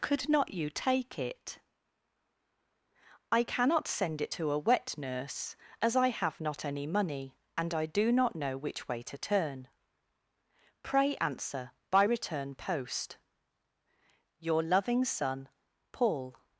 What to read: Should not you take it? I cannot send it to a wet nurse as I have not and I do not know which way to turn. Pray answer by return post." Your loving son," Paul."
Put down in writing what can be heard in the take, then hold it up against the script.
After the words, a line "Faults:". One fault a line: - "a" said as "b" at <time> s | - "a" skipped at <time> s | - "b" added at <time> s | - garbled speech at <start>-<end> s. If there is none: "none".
Could not you take it? I cannot send it to a wet nurse as I have not any money, and I do not know which way to turn. Pray answer by return post." Your loving son," Paul."
Faults:
- "Should" said as "Could" at 0.0 s
- "any money" added at 6.6 s